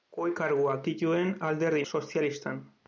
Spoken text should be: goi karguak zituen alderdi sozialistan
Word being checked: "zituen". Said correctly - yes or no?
yes